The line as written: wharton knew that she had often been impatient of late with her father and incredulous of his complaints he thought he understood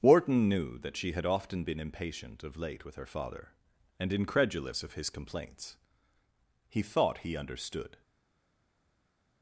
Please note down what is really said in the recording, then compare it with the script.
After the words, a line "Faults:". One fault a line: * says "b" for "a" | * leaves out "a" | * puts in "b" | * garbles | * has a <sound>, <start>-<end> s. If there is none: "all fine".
wharton knew that she had often been impatient of late with her father and incredulous of his complaints he thought he understood
Faults:
all fine